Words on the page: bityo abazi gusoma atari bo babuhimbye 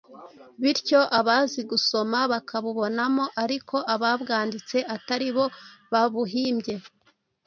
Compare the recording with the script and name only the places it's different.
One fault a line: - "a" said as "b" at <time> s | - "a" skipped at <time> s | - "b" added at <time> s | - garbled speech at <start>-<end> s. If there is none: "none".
- "bakabubonamo ariko ababwanditse" added at 2.3 s